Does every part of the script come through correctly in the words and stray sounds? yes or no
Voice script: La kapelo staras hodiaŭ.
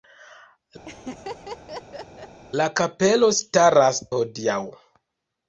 no